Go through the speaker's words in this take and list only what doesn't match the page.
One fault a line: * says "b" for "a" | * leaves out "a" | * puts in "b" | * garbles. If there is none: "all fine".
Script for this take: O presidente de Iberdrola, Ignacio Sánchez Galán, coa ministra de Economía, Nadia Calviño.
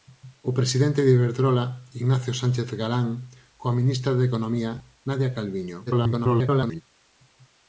* garbles